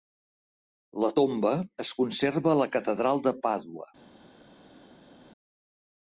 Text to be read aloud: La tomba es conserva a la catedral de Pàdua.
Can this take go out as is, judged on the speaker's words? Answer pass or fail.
pass